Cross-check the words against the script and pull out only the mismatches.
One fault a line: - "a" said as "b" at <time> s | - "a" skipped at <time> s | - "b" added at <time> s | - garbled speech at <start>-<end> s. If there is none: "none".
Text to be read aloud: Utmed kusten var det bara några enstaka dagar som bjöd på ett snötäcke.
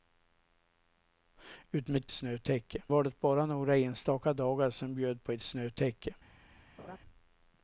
- "kusten" said as "snötäcke" at 2.1 s